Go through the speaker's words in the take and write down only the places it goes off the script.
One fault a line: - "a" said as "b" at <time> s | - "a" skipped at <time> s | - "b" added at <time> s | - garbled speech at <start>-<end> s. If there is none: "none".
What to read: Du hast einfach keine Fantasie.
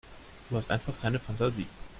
none